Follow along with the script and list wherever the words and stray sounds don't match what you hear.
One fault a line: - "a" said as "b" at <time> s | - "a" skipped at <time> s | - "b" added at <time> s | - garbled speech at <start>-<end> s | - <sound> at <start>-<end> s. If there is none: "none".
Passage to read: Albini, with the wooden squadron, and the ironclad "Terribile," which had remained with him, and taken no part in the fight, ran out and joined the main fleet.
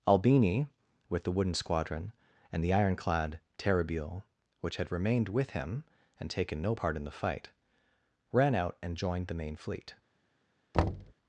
- thud at 10.7-11.1 s